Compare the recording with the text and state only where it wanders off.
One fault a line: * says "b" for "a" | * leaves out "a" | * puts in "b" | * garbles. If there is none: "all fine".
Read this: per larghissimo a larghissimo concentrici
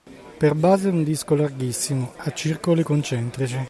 * puts in "base un disco"
* says "circoli" for "larghissimo"